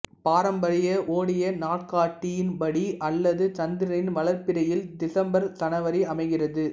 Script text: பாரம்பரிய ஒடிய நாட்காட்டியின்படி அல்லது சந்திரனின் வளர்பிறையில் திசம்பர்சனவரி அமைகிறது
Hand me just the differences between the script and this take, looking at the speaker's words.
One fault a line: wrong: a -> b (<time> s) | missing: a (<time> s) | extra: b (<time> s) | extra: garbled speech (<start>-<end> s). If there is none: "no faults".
no faults